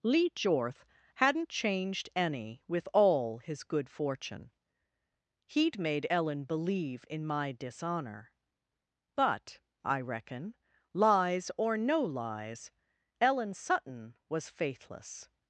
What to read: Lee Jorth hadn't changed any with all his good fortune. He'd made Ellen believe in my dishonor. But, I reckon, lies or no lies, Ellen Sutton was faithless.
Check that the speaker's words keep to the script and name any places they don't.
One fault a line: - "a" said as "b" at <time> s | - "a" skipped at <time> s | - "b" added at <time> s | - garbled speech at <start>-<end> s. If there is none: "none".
none